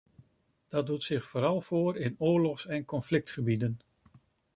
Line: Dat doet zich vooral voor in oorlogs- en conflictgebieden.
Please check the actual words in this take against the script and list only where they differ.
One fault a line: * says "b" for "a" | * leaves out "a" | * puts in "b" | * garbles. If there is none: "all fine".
all fine